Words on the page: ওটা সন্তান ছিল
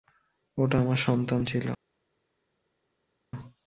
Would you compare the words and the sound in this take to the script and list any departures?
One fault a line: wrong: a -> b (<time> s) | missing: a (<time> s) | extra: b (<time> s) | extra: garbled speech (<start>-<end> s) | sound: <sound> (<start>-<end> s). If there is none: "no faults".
extra: আমার (0.8 s)